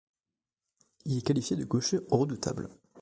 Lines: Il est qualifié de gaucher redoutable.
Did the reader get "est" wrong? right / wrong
right